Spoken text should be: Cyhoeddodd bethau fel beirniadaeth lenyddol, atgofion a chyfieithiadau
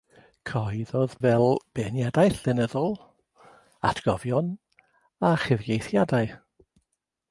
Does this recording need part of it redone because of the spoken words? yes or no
yes